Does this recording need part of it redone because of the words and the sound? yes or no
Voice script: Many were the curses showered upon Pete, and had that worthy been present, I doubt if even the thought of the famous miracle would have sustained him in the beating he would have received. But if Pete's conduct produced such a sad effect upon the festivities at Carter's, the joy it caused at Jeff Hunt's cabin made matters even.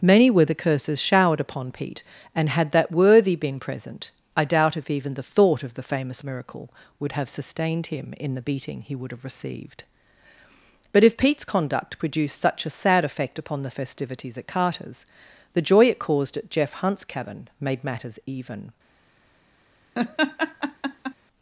yes